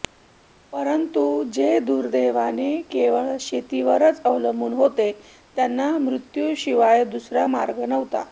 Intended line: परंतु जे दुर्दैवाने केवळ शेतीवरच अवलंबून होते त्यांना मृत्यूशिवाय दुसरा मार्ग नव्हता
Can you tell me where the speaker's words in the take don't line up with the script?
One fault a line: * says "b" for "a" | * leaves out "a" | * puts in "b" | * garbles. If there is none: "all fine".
all fine